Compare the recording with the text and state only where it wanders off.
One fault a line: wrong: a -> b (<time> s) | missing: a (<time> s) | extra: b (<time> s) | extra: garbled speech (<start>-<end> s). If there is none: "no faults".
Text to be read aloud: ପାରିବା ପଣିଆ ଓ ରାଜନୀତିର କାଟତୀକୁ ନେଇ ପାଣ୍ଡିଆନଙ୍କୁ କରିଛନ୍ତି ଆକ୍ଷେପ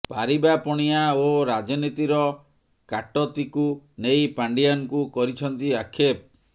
no faults